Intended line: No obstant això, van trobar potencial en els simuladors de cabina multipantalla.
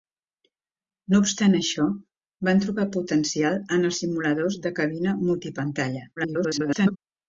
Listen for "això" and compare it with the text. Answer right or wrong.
right